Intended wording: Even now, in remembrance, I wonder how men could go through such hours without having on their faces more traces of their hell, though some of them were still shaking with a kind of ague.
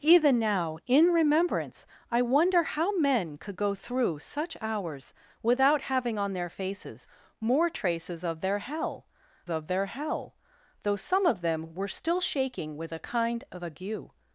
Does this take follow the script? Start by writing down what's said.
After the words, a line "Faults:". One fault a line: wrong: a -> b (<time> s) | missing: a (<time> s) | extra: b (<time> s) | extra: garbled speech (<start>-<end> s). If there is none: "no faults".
Even now, in remembrance, I wonder how men could go through such hours without having on their faces more traces of their hell of their hell, though some of them were still shaking with a kind of ague.
Faults:
extra: of their hell (9.5 s)